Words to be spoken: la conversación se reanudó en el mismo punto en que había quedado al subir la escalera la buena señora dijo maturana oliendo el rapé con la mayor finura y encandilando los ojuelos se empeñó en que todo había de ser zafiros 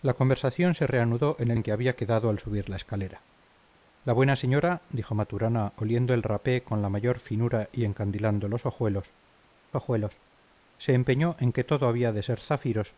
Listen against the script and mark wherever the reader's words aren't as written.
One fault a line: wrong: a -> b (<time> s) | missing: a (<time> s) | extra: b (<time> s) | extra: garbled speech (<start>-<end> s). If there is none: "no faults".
missing: mismo punto (1.6 s)
extra: ojuelos (9.7 s)